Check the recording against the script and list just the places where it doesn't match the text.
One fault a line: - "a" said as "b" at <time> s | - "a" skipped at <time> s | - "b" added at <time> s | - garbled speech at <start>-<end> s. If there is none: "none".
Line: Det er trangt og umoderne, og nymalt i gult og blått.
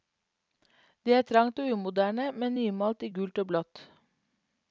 - "og" said as "men" at 2.3 s